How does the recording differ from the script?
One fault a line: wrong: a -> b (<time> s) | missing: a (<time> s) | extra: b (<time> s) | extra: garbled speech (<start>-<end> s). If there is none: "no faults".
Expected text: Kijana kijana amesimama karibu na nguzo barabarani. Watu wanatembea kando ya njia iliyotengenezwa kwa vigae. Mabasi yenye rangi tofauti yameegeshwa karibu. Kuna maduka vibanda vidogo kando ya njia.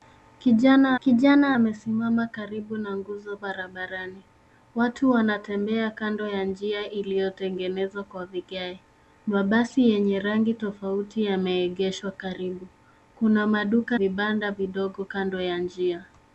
no faults